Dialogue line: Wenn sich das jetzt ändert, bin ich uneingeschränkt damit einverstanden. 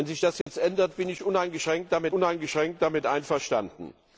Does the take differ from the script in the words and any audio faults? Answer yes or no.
yes